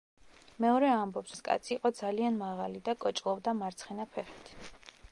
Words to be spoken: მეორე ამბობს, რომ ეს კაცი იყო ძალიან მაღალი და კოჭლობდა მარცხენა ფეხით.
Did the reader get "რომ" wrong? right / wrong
wrong